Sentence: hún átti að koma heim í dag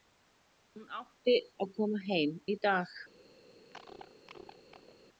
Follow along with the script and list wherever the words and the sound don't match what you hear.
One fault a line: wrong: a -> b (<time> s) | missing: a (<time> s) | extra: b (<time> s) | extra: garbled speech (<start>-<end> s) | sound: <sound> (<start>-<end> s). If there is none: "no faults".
sound: cough (3.7-5.0 s)